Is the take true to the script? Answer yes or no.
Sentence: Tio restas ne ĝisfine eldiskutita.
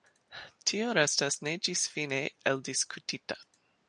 yes